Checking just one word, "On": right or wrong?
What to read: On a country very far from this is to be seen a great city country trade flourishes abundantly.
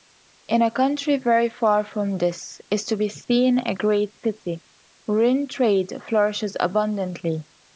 wrong